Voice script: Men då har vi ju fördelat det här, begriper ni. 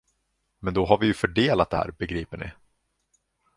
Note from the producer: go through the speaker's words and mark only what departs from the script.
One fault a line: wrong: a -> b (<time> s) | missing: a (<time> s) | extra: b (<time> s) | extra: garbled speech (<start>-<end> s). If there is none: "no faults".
no faults